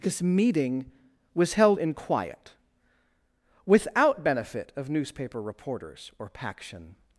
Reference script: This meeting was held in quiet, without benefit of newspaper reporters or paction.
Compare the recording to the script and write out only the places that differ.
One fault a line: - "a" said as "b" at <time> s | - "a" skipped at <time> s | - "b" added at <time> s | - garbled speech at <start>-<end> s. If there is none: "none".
none